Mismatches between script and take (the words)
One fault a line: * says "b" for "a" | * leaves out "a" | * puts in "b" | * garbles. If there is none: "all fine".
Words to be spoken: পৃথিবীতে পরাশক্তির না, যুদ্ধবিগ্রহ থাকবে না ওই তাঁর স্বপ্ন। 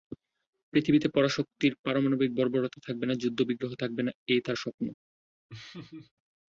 * puts in "পারমাণবিক বর্বরতা থাকবে"
* says "এই" for "ওই"